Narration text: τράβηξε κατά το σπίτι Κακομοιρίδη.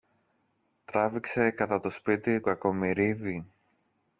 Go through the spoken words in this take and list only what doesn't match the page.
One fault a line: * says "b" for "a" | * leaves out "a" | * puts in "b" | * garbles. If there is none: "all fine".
all fine